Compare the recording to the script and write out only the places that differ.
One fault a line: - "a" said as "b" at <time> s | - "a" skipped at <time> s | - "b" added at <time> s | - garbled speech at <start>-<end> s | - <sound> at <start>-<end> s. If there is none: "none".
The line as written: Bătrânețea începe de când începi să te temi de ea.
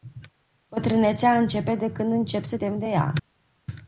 - "te" skipped at 2.6 s